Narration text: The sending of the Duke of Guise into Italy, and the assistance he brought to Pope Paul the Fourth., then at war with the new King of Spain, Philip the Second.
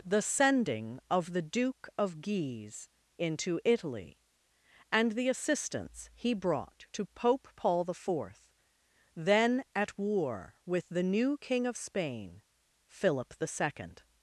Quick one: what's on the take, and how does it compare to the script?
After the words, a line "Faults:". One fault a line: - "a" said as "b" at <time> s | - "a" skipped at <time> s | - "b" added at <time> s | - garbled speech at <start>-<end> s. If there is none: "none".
The sending of the Duke of Guise into Italy, and the assistance he brought to Pope Paul the Fourth., then at war with the new King of Spain, Philip the Second.
Faults:
none